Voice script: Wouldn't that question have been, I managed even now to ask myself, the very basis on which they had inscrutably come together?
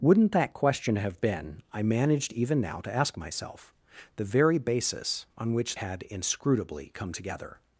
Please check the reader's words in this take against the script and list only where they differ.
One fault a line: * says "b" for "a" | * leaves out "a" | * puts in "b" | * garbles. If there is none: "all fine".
* leaves out "they"